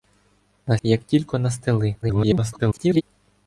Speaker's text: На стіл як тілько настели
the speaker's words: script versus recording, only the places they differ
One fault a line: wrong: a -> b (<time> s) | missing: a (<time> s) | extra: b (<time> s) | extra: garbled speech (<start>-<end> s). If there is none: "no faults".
missing: стіл (0.8 s)
extra: garbled speech (2.0-3.0 s)